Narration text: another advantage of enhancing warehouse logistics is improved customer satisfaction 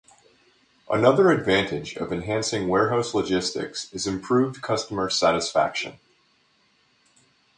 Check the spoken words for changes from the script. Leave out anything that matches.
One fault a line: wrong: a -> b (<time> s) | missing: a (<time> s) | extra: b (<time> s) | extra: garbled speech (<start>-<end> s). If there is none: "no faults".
no faults